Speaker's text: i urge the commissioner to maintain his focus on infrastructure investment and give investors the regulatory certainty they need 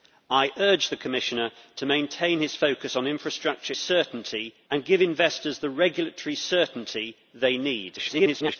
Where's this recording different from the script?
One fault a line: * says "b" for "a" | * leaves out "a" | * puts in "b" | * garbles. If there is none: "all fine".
* says "certainty" for "investment"
* garbles